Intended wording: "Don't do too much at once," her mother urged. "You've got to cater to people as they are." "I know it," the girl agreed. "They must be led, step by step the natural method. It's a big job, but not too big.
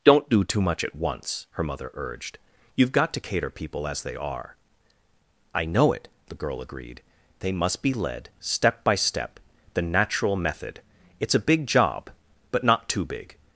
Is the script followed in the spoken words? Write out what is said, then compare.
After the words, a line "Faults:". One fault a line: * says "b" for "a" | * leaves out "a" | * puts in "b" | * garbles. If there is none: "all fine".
"Don't do too much at once," her mother urged. "You've got to cater people as they are." "I know it," the girl agreed. "They must be led, step by step the natural method. It's a big job, but not too big.
Faults:
* leaves out "to"